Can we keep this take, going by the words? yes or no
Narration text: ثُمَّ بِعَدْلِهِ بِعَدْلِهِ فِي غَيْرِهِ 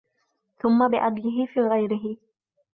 no